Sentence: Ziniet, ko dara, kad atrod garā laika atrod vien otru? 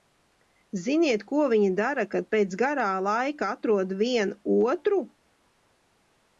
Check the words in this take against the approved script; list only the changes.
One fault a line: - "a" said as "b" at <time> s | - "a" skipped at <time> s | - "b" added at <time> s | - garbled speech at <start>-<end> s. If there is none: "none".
- "viņi" added at 1.5 s
- "atrod" said as "pēc" at 2.4 s